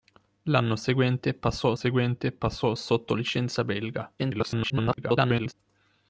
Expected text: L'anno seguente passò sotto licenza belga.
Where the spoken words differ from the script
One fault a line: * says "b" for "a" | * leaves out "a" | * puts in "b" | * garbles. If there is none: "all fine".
* puts in "seguente passò"
* garbles